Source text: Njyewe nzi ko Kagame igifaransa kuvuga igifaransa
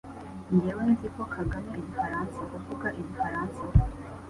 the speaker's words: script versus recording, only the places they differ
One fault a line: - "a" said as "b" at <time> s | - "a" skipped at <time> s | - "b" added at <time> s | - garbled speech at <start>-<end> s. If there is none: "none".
none